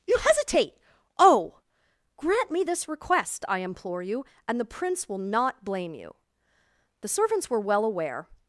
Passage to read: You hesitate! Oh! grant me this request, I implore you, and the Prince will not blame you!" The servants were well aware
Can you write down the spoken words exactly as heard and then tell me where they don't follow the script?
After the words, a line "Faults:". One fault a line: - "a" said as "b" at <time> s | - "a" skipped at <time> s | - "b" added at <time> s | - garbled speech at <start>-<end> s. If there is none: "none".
You hesitate! Oh! grant me this request, I implore you, and the Prince will not blame you!" The servants were well aware
Faults:
none